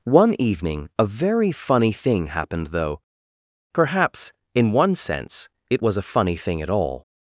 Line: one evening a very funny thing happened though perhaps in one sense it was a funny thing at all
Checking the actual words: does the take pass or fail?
pass